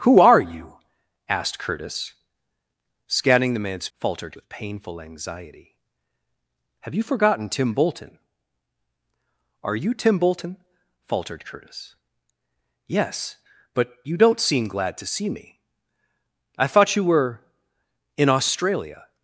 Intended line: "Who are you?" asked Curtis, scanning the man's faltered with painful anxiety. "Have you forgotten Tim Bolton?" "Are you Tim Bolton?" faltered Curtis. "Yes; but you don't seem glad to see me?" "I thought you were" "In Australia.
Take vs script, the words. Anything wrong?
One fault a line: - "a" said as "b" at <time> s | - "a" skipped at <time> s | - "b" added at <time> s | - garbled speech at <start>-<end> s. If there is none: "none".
none